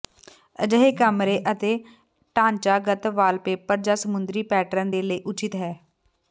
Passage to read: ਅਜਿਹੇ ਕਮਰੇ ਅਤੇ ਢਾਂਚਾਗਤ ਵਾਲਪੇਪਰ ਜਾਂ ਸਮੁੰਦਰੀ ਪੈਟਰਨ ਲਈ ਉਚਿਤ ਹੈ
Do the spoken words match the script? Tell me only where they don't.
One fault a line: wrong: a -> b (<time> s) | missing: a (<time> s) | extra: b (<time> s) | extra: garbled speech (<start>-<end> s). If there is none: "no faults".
extra: ਦੇ (4.9 s)